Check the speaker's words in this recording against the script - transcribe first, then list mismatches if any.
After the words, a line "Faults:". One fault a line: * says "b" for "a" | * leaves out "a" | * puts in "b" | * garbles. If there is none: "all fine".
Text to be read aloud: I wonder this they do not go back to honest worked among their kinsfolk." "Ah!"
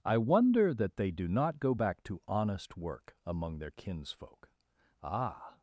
I wonder that they do not go back to honest work among their kinsfolk." "Ah!"
Faults:
* says "that" for "this"
* says "work" for "worked"